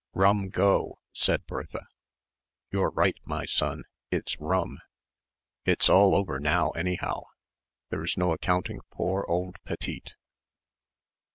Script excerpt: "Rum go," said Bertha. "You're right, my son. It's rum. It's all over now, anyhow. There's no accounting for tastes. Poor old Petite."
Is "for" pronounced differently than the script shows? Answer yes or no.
yes